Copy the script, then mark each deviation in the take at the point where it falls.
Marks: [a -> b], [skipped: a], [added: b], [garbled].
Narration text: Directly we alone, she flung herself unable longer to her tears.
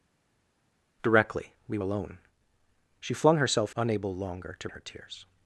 Directly we alone, she flung herself unable longer to her tears.